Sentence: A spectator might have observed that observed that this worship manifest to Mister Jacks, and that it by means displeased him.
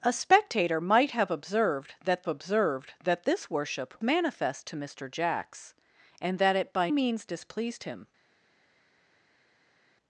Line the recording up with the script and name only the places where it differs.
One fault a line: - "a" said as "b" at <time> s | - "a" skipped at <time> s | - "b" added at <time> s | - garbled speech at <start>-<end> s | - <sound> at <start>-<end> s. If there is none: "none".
none